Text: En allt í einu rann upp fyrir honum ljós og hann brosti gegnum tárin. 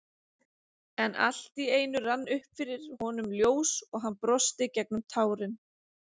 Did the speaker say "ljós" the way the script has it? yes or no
yes